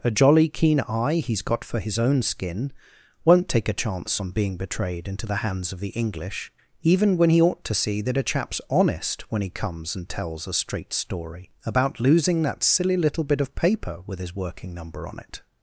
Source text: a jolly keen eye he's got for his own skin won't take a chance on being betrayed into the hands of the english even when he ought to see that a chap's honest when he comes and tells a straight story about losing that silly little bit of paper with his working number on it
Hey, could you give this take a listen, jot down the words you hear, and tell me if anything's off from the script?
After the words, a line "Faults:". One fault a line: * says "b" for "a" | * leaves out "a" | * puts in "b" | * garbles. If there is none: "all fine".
a jolly keen eye he's got for his own skin won't take a chance on being betrayed into the hands of the english even when he ought to see that a chap's honest when he comes and tells a straight story about losing that silly little bit of paper with his working number on it
Faults:
all fine